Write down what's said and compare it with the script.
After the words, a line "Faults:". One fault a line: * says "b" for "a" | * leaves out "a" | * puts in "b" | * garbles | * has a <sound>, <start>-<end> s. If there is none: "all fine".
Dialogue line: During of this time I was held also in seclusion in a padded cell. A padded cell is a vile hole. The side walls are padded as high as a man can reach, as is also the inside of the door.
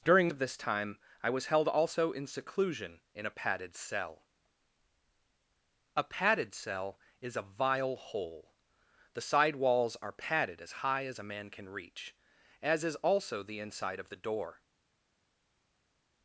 During of this time I was held also in seclusion in a padded cell. A padded cell is a vile hole. The side walls are padded as high as a man can reach, as is also the inside of the door.
Faults:
all fine